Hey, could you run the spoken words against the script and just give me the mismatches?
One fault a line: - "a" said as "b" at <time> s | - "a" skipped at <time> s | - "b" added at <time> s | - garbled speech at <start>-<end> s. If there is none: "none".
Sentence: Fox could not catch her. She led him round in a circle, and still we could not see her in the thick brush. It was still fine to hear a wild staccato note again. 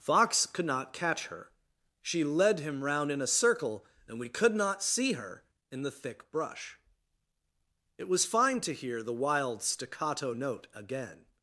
- "still" skipped at 4.2 s
- "still" skipped at 8.2 s
- "a" said as "the" at 9.0 s